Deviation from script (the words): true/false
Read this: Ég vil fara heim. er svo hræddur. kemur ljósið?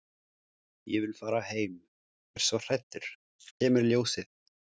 false